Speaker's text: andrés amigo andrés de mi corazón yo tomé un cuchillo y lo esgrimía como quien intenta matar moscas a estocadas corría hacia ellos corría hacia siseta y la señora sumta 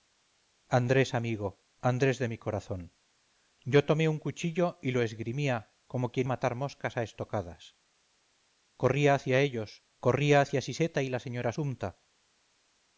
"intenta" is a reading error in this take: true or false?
true